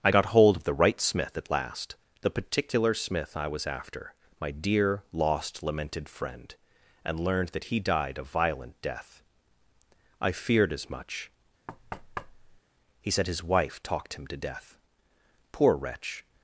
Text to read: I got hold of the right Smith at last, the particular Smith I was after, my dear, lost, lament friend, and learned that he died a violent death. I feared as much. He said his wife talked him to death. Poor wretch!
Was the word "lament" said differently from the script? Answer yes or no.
yes